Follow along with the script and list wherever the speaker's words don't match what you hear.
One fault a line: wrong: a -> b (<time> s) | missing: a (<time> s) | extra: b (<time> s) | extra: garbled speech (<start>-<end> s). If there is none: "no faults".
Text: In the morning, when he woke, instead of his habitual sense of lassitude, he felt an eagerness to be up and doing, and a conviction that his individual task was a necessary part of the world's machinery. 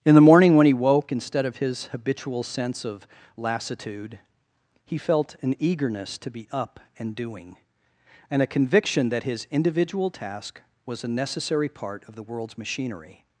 no faults